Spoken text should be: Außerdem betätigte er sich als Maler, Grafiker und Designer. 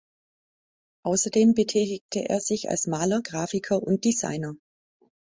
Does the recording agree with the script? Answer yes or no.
yes